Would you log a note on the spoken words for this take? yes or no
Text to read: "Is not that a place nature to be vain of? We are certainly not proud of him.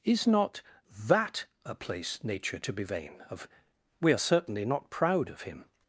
no